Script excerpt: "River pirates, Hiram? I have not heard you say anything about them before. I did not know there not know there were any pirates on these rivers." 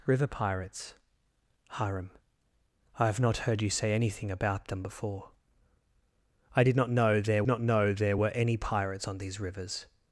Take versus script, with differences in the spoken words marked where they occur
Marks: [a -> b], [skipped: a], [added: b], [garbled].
"River pirates, Hiram? I have not heard you say anything about them before. I did not know there not know there were any pirates on these rivers."